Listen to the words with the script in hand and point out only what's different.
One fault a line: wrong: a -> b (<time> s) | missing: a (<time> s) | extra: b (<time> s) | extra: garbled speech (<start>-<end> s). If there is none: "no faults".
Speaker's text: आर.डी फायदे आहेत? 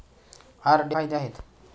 no faults